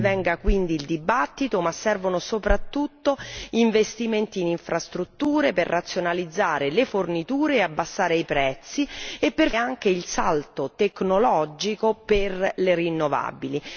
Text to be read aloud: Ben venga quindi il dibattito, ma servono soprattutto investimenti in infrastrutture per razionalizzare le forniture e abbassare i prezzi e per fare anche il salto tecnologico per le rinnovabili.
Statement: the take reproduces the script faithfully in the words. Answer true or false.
false